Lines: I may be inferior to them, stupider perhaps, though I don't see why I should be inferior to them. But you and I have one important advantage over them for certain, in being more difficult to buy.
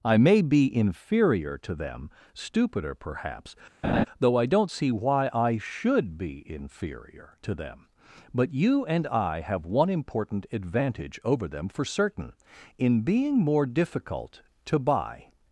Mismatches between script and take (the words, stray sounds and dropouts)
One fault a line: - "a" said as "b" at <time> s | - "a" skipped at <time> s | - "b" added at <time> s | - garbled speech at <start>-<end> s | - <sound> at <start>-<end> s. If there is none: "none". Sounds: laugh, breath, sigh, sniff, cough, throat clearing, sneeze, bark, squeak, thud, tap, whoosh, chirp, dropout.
- laugh at 3.8-4.1 s